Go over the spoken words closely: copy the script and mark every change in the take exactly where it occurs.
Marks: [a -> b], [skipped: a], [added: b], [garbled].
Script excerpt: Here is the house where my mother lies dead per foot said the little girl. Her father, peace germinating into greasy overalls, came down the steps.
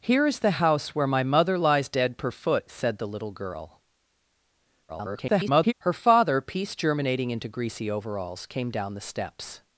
Here is the house where my mother lies dead per foot said the little girl. [garbled] Her father, peace germinating into greasy overalls, came down the steps.